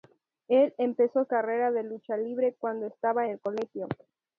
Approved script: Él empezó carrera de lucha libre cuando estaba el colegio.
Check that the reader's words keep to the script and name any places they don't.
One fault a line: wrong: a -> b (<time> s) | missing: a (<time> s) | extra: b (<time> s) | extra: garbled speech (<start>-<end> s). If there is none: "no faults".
no faults